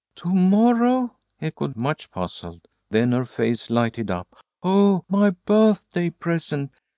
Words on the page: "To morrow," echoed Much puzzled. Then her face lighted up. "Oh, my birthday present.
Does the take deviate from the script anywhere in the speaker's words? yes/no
no